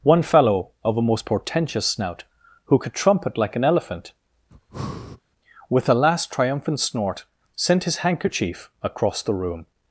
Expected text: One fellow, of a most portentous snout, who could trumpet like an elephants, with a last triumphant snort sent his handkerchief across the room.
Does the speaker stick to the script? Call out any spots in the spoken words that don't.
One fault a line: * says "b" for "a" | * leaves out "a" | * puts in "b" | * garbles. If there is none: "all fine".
* says "elephant" for "elephants"